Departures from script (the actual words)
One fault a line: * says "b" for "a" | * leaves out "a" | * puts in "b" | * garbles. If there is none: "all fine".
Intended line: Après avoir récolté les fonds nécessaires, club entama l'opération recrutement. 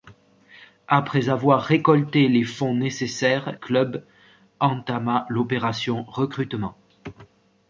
all fine